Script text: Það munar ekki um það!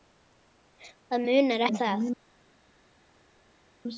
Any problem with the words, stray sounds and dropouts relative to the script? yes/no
yes